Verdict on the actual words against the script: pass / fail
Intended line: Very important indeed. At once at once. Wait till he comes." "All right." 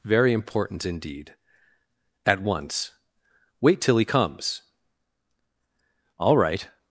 fail